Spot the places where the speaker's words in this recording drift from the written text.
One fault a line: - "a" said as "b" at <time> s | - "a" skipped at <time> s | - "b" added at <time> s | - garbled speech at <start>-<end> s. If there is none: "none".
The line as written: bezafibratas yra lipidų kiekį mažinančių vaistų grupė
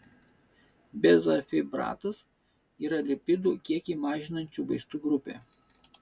none